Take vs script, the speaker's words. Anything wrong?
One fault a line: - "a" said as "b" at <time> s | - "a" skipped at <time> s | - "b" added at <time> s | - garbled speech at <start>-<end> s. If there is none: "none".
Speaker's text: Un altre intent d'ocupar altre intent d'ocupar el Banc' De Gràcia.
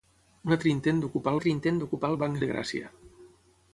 none